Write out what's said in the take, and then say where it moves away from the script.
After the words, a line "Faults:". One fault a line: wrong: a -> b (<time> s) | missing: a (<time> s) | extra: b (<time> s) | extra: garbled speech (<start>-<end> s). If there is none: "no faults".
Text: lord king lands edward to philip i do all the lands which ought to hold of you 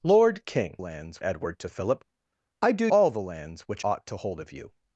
lord king lands edward to philip i do all the lands which ought to hold of you
Faults:
no faults